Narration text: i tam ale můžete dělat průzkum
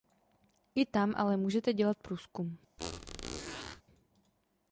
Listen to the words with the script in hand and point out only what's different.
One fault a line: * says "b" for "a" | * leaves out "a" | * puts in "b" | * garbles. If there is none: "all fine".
all fine